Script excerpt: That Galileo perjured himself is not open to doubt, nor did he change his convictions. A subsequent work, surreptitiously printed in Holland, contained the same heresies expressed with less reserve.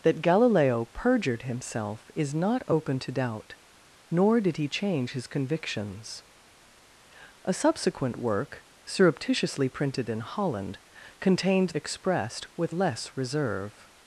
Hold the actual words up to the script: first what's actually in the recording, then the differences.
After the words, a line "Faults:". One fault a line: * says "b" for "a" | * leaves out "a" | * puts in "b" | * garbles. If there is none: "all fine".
That Galileo perjured himself is not open to doubt, nor did he change his convictions. A subsequent work, surreptitiously printed in Holland, contained expressed with less reserve.
Faults:
* leaves out "the same heresies"